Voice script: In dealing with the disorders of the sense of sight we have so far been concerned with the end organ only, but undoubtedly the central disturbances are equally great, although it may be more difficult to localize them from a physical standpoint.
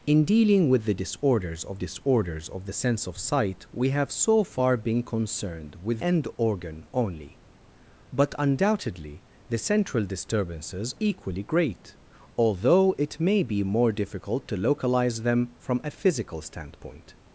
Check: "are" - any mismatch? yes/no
yes